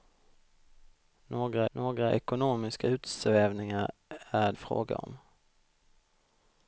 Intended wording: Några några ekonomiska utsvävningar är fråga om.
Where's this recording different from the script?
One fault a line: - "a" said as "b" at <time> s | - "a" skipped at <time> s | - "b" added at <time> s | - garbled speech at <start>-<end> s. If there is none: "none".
none